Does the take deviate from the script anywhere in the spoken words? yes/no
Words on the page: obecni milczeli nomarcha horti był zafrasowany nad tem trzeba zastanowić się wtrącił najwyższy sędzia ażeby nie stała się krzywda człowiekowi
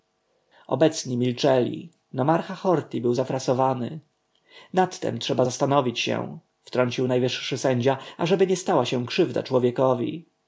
no